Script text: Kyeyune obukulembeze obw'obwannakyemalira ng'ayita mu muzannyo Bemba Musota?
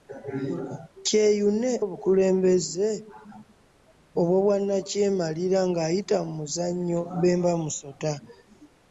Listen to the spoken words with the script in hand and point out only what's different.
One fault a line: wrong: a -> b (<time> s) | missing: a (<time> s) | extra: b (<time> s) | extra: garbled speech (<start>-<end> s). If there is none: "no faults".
no faults